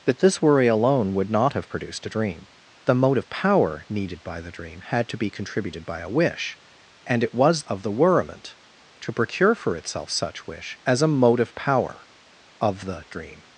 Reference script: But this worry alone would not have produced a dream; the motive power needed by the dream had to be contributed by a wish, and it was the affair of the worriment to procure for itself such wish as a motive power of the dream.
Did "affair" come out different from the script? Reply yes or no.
yes